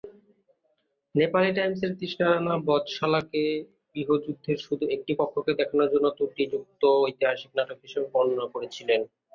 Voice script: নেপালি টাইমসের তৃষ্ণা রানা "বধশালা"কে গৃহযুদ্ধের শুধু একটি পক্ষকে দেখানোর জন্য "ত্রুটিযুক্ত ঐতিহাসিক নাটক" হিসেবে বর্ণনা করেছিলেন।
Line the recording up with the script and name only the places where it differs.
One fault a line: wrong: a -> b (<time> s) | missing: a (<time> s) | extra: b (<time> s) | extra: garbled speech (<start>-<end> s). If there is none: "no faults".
no faults